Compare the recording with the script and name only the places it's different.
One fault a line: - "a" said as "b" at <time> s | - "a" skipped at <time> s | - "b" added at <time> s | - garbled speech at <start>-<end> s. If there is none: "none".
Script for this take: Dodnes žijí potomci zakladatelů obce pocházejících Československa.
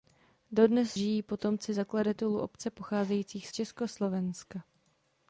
none